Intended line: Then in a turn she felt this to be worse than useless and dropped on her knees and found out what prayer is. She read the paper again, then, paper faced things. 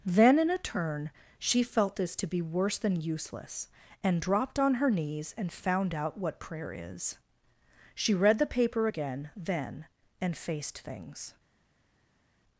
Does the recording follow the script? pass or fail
fail